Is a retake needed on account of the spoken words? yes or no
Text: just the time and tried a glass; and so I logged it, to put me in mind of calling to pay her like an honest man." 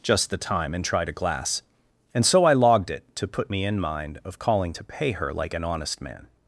no